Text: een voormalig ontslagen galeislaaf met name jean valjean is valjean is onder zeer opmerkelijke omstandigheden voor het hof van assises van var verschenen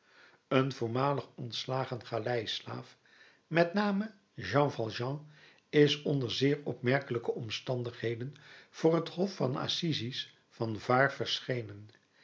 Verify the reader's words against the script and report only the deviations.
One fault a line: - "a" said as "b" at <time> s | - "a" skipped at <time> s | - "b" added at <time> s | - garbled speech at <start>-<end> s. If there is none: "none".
- "valjean is" skipped at 6.0 s